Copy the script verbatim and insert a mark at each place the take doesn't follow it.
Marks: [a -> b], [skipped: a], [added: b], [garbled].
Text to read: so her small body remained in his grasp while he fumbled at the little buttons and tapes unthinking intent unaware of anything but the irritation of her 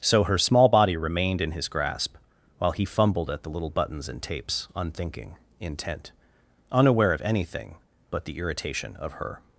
so her small body remained in his grasp while he fumbled at the little buttons and tapes unthinking intent unaware of anything but the irritation of her